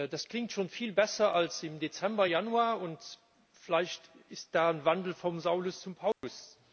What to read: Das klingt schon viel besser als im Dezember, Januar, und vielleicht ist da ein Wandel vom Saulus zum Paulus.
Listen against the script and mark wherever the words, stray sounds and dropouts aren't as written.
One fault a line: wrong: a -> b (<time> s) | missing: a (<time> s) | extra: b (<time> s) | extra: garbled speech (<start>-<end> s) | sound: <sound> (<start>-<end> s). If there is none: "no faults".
sound: dropout (6.1-6.2 s)